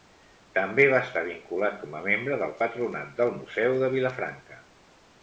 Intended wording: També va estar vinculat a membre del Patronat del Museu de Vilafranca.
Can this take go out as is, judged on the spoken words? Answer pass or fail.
fail